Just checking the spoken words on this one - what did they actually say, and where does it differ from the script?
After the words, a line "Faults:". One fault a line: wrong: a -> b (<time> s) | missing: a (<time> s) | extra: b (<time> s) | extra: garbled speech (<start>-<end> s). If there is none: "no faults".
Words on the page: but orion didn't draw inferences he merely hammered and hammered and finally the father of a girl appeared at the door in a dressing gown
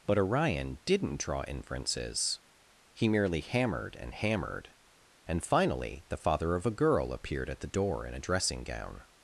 but orion didn't draw inferences he merely hammered and hammered and finally the father of a girl appeared at the door in a dressing gown
Faults:
no faults